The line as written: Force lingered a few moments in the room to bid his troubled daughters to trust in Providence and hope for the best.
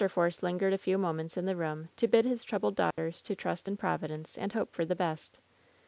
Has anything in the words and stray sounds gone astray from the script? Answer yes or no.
yes